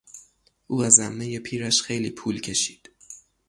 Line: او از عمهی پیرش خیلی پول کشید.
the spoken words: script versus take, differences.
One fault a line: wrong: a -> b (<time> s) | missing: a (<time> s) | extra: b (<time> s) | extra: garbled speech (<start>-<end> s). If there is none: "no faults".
no faults